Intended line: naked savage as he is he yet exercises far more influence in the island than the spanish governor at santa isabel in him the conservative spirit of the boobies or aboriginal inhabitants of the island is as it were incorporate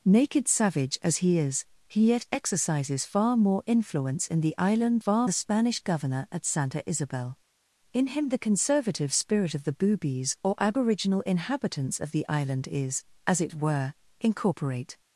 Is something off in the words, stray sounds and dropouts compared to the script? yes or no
yes